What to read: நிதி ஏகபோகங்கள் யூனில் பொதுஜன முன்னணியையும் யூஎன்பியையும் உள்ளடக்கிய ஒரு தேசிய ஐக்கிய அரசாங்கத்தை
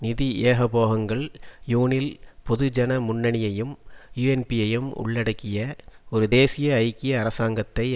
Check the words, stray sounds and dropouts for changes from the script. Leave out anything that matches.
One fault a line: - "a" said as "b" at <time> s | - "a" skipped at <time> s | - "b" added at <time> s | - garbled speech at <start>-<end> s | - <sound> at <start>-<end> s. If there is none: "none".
none